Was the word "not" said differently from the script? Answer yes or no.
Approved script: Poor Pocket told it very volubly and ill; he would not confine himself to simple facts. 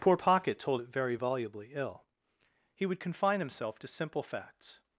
yes